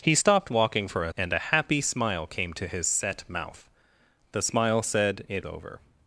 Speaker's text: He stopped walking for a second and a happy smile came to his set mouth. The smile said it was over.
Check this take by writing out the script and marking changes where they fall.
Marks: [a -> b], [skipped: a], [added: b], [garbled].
He stopped walking for a [skipped: second] and a happy smile came to his set mouth. The smile said it [skipped: was] over.